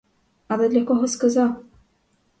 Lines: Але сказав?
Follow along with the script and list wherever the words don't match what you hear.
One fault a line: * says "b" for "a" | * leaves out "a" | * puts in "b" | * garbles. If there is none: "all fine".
* puts in "для кого"